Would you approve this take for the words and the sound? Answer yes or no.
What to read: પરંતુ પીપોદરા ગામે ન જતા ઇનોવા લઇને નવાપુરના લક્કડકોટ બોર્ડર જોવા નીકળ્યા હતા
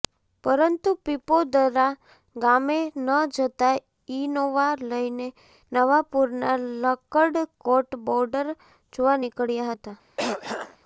no